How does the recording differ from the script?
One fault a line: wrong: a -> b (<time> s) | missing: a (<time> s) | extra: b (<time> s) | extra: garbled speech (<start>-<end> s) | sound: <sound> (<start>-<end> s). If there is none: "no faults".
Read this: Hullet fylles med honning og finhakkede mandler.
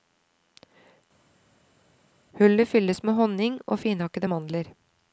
no faults